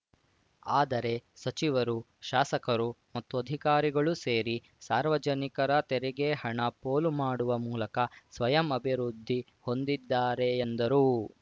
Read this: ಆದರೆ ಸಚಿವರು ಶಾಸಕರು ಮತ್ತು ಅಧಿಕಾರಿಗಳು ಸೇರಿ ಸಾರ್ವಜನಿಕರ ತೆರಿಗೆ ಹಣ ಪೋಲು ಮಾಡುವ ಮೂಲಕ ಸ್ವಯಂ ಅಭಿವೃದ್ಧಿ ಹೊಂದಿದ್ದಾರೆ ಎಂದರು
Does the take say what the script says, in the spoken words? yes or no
yes